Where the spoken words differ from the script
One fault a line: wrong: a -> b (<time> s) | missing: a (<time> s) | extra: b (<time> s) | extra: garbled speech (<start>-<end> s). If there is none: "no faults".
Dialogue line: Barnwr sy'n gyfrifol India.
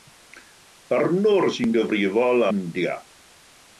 no faults